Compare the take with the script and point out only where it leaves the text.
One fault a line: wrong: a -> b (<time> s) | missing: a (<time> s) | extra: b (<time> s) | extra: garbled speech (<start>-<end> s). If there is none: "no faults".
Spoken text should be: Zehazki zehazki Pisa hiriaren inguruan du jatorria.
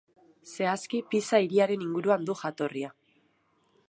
missing: zehazki (1.0 s)